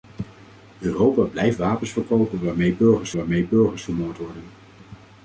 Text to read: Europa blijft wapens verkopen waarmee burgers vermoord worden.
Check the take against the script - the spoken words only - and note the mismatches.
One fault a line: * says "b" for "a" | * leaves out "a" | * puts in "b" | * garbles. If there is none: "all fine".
* puts in "waarmee burgers"